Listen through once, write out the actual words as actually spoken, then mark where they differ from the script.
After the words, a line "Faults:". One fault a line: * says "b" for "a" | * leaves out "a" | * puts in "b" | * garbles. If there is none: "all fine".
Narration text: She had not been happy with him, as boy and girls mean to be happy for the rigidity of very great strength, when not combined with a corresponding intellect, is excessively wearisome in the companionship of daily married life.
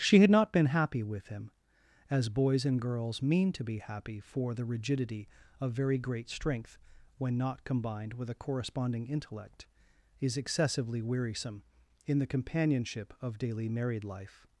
She had not been happy with him, as boys and girls mean to be happy for the rigidity of very great strength, when not combined with a corresponding intellect, is excessively wearisome in the companionship of daily married life.
Faults:
* says "boys" for "boy"